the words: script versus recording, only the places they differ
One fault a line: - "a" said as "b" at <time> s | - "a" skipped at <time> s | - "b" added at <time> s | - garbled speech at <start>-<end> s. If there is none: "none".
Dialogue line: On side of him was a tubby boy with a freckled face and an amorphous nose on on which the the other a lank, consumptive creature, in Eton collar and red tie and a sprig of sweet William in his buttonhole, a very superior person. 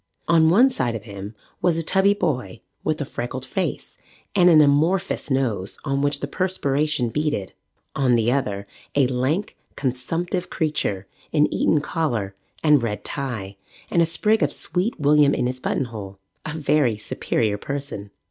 - "one" added at 0.5 s
- "on" skipped at 6.0 s
- "perspiration beaded on" added at 6.3 s